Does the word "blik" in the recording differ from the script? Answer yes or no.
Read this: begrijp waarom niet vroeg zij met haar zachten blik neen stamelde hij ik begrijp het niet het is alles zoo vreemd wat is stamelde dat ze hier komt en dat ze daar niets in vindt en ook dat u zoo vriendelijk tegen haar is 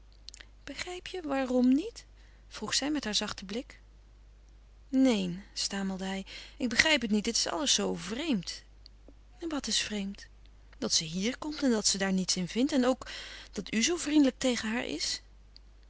no